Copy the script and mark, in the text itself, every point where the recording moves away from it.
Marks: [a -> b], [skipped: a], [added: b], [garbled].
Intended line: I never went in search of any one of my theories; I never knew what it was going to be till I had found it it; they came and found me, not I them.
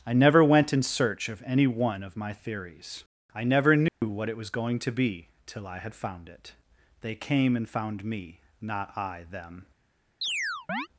I never went in search of any one of my theories; I never knew what it was going to be till I had found it [skipped: it;] they came and found me, not I them.